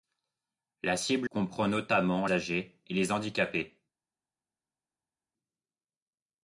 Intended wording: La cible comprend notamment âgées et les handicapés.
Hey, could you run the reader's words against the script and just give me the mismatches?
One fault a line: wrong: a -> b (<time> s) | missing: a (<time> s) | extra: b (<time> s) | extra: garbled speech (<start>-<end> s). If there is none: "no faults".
no faults